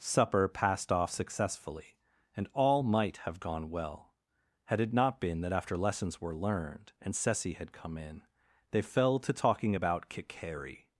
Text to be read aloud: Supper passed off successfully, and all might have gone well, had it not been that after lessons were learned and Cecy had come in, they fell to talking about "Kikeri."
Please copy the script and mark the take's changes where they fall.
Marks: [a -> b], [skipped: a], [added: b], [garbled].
Supper passed off successfully, and all might have gone well, had it not been that after lessons were learned and Cecy had come in, they fell to talking about "Kikeri."